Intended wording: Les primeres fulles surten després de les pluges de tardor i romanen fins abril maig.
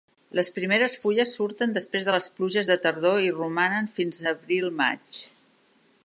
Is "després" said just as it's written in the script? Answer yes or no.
yes